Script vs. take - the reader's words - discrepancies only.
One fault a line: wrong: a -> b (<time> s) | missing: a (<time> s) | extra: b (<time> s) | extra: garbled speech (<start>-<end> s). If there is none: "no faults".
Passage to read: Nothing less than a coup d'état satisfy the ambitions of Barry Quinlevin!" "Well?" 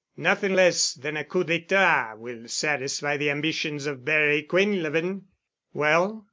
extra: will (2.2 s)